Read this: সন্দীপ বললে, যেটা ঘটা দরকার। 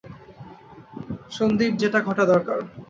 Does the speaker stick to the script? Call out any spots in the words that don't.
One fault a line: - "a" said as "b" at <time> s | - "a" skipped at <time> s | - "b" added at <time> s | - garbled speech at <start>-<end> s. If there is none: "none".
- "বললে" skipped at 1.7 s